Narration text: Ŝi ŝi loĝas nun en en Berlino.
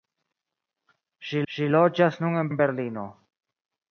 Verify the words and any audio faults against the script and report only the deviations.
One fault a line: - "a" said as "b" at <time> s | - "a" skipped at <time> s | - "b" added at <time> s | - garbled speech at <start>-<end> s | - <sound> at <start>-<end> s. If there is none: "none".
none